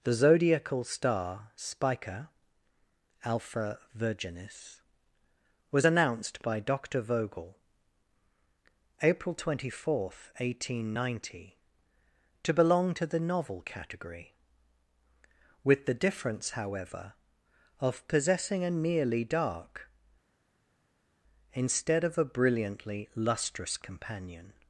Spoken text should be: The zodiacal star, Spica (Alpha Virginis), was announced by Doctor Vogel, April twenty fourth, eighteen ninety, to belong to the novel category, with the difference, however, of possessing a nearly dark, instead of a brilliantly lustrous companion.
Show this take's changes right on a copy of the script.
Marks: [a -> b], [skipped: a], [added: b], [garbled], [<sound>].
The zodiacal star, Spica (Alpha Virginis), was announced by Doctor Vogel, April twenty fourth, eighteen ninety, to belong to the novel category, with the difference, however, of possessing a nearly dark, instead of a brilliantly lustrous companion.